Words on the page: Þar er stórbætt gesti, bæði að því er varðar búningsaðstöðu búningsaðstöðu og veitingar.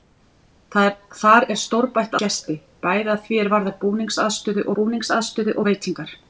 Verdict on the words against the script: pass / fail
pass